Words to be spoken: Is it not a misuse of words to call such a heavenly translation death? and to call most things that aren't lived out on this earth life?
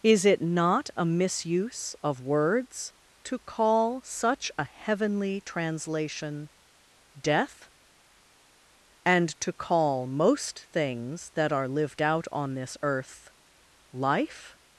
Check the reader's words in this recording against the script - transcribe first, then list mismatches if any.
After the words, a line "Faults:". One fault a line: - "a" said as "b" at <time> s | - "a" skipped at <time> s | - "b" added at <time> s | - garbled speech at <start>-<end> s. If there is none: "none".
Is it not a misuse of words to call such a heavenly translation death? and to call most things that are lived out on this earth life?
Faults:
- "aren't" said as "are" at 11.5 s